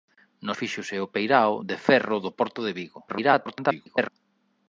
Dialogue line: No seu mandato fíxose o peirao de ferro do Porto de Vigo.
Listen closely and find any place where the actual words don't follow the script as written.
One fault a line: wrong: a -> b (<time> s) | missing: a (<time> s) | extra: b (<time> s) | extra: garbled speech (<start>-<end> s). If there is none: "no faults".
missing: seu mandato (0.5 s)
extra: garbled speech (3.1-4.1 s)